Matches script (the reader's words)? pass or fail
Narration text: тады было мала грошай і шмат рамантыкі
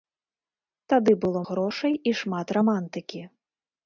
fail